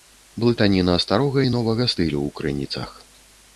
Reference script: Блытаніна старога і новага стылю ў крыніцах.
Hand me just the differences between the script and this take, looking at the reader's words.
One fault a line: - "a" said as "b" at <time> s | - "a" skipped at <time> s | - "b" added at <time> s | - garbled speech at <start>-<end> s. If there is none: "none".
none